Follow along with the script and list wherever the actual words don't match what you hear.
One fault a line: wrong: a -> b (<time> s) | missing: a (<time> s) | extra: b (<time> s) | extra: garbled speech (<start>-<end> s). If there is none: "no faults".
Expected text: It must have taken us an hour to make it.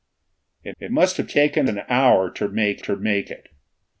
extra: it (0.8 s)
missing: us (1.7 s)
extra: to make (2.8 s)